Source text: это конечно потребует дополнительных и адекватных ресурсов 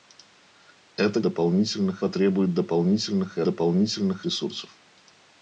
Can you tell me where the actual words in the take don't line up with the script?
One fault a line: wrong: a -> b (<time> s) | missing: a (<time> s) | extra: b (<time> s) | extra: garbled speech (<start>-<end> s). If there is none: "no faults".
wrong: конечно -> дополнительных (1.2 s)
wrong: адекватных -> дополнительных (3.4 s)